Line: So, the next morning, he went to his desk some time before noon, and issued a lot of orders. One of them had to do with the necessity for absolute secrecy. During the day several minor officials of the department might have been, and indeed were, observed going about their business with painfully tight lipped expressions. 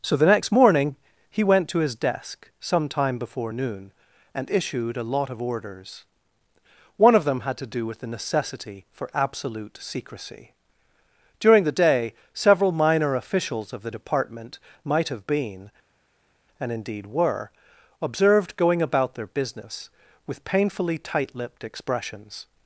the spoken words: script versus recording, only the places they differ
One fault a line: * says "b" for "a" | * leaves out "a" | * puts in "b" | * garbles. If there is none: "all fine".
all fine